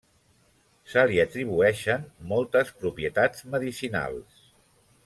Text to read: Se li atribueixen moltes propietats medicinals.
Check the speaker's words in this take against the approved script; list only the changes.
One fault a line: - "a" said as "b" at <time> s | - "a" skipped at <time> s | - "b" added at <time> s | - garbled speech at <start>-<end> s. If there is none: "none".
none